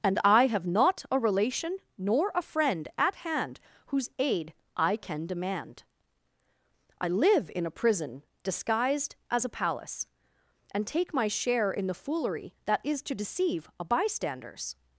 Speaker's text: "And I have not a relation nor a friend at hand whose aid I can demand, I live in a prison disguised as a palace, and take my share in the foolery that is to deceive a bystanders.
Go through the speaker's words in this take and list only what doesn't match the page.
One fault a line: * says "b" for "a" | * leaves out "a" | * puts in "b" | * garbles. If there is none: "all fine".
all fine